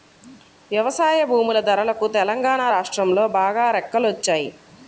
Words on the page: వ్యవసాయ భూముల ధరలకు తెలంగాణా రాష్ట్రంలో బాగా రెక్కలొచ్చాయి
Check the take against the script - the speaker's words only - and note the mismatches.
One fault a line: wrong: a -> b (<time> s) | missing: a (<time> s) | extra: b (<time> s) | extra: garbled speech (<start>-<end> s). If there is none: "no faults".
no faults